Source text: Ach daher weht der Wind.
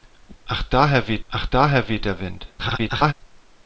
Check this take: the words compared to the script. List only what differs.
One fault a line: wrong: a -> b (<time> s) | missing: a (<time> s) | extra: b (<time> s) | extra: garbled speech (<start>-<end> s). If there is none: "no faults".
extra: ach daher weht (1.3 s)
extra: garbled speech (2.6-3.1 s)